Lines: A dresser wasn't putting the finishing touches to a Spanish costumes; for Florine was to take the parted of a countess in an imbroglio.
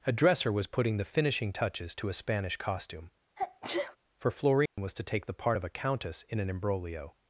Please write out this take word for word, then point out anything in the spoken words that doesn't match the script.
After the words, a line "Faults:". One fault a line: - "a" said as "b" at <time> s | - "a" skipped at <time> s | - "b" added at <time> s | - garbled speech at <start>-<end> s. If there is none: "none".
A dresser was putting the finishing touches to a Spanish costume; for Florine was to take the part of a countess in an imbroglio.
Faults:
- "wasn't" said as "was" at 0.5 s
- "costumes" said as "costume" at 2.6 s
- "parted" said as "part" at 5.3 s